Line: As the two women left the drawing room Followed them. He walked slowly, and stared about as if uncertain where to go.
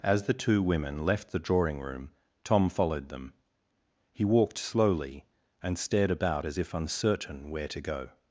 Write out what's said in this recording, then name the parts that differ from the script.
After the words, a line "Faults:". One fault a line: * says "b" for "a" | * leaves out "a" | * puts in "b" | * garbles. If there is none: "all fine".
As the two women left the drawing room Tom followed them. He walked slowly, and stared about as if uncertain where to go.
Faults:
* puts in "Tom"